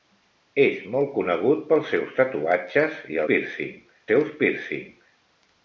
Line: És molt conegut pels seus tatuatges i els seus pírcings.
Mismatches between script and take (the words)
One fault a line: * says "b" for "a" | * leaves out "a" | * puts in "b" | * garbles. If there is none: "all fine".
* says "pírcings" for "els"